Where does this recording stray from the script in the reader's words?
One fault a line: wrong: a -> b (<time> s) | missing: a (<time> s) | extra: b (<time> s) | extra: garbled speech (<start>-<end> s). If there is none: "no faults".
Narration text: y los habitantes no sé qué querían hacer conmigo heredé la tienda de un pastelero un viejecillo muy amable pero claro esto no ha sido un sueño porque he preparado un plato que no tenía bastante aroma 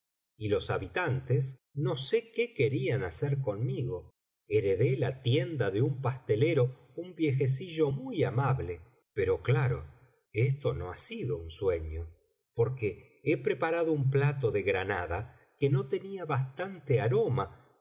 extra: de granada (14.5 s)